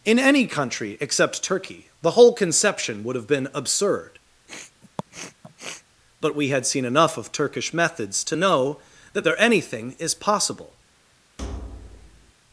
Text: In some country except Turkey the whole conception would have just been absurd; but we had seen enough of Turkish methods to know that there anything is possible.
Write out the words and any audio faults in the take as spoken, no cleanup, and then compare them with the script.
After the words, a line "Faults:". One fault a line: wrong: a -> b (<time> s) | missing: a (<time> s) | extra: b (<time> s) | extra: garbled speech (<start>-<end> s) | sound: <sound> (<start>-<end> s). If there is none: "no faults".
In any country except Turkey the whole conception would have been absurd; but we had seen enough of Turkish methods to know that there anything is possible.
Faults:
wrong: some -> any (0.2 s)
missing: just (3.3 s)
sound: sniff (4.5-5.8 s)
sound: thud (11.4-12.3 s)